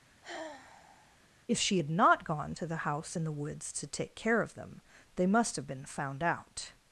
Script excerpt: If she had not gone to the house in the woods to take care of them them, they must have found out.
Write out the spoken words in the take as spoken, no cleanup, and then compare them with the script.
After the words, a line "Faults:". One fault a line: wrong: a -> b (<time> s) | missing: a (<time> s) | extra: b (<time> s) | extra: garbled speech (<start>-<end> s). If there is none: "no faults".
If she had not gone to the house in the woods to take care of them, they must have been found out.
Faults:
missing: them (4.8 s)
extra: been (5.7 s)